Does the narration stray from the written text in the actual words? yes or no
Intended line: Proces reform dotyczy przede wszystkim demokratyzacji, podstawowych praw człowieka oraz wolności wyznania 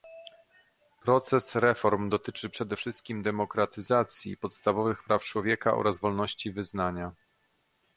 no